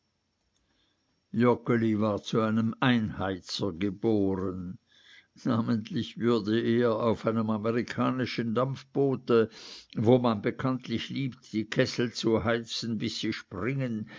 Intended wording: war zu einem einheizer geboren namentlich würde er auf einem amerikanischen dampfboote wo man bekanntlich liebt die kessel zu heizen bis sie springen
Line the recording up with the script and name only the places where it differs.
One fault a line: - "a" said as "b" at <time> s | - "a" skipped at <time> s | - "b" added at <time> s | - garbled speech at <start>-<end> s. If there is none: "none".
none